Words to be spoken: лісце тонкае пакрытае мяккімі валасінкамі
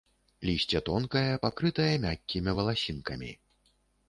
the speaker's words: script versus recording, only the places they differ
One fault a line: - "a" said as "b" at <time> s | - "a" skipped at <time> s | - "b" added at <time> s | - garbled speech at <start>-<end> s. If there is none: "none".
none